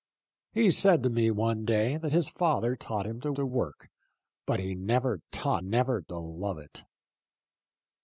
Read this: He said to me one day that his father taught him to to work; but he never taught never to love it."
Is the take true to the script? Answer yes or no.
yes